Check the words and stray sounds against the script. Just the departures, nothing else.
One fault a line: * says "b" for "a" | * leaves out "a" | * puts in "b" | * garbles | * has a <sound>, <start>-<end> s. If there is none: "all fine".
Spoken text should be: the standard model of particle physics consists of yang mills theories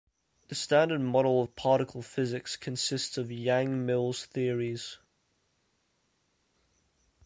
all fine